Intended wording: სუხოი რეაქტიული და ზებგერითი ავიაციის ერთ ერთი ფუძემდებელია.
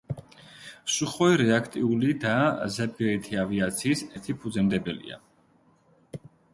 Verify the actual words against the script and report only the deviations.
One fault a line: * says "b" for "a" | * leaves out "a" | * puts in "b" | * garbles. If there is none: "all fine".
* leaves out "ერთ"